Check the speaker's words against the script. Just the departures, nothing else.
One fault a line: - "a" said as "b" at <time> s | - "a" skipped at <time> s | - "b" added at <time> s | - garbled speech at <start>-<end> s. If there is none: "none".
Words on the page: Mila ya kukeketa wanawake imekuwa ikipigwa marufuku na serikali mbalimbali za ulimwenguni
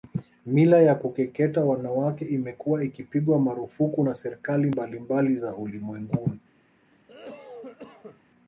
none